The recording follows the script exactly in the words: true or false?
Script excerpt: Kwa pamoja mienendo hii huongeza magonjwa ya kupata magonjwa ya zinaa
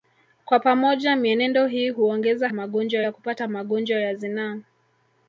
true